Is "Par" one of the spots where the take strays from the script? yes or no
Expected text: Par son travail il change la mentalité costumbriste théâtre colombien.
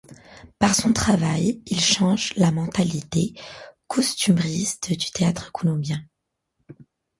no